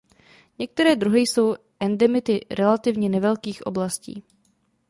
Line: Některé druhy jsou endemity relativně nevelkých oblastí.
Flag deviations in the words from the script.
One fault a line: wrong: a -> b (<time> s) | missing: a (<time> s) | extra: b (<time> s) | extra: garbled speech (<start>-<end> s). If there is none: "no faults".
no faults